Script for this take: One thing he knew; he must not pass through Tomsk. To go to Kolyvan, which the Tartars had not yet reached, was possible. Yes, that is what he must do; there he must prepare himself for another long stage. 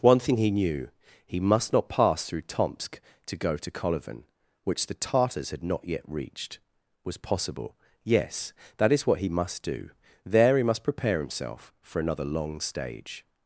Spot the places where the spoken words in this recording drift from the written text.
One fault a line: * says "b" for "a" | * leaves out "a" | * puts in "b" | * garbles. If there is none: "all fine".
all fine